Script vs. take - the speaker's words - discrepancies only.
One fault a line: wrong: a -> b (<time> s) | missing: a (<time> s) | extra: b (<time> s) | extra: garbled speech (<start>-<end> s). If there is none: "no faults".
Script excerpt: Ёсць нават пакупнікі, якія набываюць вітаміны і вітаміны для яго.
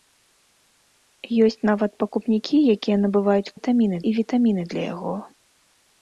no faults